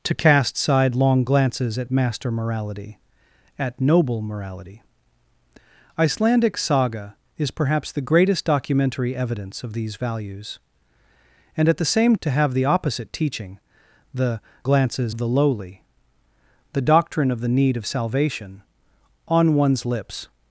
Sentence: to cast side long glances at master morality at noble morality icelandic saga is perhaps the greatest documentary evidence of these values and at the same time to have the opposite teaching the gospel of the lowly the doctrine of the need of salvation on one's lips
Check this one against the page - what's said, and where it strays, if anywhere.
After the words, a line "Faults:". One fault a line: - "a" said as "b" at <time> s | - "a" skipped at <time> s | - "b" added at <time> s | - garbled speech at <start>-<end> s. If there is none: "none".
to cast side long glances at master morality at noble morality icelandic saga is perhaps the greatest documentary evidence of these values and at the same to have the opposite teaching the glances of the lowly the doctrine of the need of salvation on one's lips
Faults:
- "time" skipped at 12.2 s
- "gospel" said as "glances" at 14.6 s